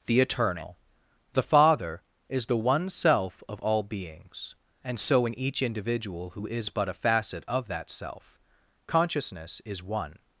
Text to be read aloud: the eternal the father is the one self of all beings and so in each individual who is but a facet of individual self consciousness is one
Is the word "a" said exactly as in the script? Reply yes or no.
yes